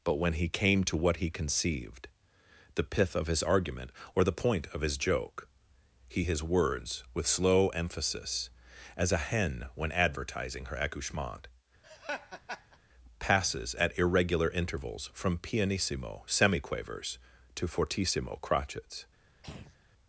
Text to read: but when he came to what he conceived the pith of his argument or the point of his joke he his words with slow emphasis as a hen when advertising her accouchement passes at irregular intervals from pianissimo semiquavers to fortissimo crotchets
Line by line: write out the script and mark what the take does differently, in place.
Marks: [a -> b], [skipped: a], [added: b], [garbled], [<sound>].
but when he came to what he conceived the pith of his argument or the point of his joke he his words with slow emphasis as a hen when advertising her accouchement [laugh] passes at irregular intervals from pianissimo semiquavers to fortissimo crotchets [throat clearing]